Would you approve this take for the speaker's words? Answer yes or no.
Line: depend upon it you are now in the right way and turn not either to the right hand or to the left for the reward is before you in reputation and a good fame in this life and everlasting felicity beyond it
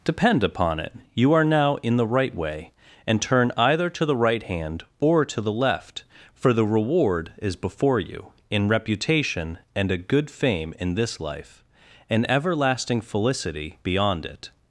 no